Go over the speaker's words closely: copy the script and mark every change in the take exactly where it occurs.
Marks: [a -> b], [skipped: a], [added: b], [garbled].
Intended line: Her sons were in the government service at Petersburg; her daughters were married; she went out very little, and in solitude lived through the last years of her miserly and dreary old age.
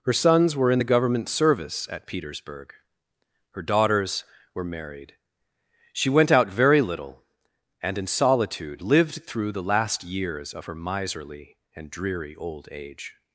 Her sons were in the government service at Petersburg; her daughters were married; she went out very little, and in solitude lived through the last years of her miserly and dreary old age.